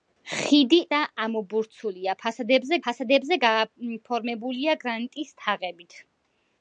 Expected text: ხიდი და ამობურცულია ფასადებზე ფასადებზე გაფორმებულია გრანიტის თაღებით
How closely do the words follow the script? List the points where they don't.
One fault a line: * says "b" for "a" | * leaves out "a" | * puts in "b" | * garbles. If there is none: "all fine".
all fine